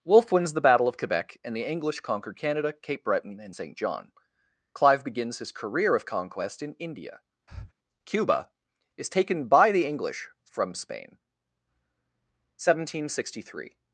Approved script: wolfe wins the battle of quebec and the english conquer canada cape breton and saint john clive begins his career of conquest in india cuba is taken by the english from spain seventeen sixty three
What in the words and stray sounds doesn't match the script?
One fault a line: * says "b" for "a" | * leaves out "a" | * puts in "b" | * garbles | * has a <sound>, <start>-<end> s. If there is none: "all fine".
* has a breath, 7.5-7.7 s